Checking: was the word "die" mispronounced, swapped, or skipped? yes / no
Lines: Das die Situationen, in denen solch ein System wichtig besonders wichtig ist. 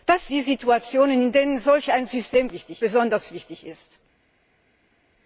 no